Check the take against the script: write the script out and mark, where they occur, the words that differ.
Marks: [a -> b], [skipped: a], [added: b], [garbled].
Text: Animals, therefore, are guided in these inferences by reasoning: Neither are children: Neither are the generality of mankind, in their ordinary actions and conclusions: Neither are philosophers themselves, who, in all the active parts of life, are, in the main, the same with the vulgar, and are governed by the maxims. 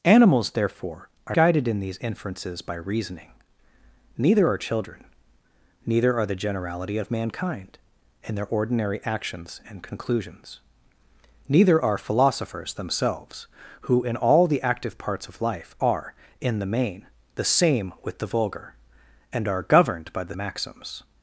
Animals, therefore, are guided in these inferences by reasoning: Neither are children: Neither are the generality of mankind, in their ordinary actions and conclusions: Neither are philosophers themselves, who, in all the active parts of life, are, in the main, the same with the vulgar, and are governed by the maxims.